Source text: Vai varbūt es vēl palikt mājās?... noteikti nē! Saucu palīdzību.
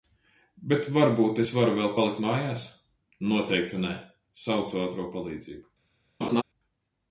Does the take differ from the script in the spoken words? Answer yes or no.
yes